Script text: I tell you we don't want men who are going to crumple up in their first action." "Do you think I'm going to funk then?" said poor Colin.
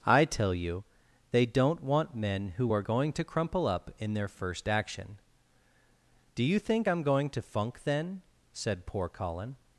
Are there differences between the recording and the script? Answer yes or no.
yes